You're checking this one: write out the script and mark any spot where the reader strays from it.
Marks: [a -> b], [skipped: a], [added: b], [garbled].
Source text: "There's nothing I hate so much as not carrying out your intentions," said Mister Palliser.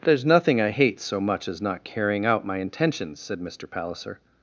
"There's nothing I hate so much as not carrying out [your -> my] intentions," said Mister Palliser.